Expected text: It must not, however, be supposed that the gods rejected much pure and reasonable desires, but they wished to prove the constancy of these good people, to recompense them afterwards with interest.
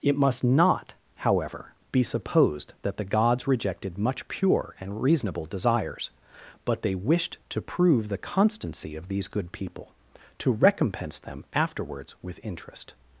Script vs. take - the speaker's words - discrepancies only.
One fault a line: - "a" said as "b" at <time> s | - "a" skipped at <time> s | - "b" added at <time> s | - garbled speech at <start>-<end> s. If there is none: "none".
none